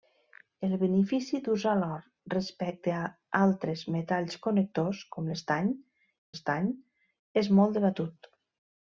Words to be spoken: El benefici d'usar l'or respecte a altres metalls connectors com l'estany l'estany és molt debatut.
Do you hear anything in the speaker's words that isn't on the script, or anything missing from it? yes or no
no